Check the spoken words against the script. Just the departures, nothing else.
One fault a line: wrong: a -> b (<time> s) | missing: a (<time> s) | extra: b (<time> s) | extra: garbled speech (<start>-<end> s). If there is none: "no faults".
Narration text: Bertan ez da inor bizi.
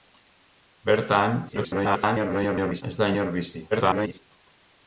extra: garbled speech (1.5-2.8 s)
extra: garbled speech (3.7-4.2 s)